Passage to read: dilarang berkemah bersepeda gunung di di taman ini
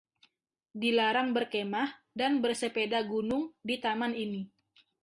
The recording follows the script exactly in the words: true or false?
false